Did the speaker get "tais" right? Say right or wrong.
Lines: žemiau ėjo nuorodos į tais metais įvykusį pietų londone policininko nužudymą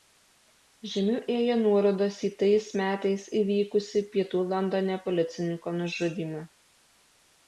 right